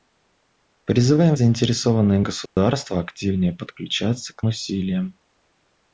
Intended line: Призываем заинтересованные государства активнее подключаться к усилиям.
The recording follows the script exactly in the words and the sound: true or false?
false